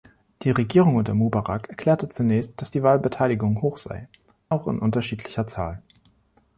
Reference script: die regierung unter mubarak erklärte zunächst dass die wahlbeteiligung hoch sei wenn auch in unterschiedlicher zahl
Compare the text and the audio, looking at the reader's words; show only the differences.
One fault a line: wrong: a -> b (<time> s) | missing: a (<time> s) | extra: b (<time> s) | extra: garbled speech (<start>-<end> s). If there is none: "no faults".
missing: wenn (4.1 s)